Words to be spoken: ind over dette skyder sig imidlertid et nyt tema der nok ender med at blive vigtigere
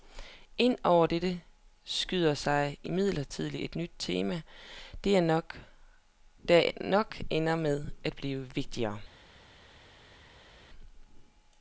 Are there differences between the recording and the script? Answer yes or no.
no